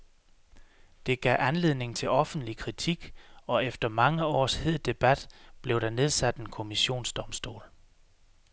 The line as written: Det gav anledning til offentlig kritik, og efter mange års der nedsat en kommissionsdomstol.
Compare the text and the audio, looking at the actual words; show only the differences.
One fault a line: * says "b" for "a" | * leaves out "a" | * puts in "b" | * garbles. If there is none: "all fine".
* puts in "hed debat blev"